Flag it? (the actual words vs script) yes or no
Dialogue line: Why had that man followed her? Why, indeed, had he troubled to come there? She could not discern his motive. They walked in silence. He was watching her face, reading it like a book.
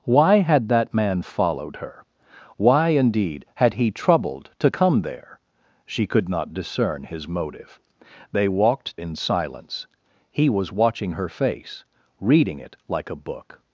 no